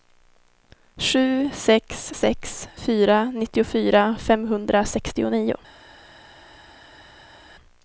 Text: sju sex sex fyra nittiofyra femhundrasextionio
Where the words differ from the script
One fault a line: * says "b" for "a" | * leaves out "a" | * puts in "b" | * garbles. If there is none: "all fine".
all fine